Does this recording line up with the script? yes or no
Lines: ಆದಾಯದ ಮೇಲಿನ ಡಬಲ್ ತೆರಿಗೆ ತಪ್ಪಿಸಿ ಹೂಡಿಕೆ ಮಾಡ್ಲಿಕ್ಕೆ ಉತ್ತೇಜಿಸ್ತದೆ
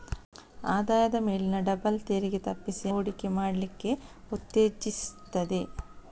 yes